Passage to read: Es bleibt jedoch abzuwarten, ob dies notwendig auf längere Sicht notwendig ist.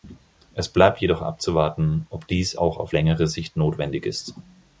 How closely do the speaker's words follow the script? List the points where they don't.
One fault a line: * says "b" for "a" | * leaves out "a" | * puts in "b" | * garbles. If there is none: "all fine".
* says "auch" for "notwendig"